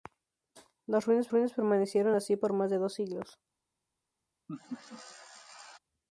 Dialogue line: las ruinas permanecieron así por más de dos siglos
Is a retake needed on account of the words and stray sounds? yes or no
yes